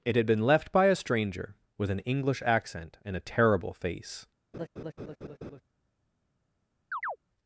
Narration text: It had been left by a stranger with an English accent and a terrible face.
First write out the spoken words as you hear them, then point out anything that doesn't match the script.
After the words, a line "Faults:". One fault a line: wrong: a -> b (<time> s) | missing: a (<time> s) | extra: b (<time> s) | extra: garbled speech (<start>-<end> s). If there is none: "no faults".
It had been left by a stranger with an English accent and a terrible face.
Faults:
no faults